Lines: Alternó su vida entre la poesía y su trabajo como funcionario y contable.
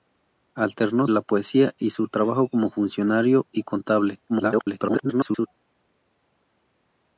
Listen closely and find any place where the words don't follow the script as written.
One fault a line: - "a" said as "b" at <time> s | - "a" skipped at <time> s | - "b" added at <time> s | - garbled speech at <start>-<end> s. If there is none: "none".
- "su vida entre" skipped at 1.1 s
- garbled speech at 4.3-5.5 s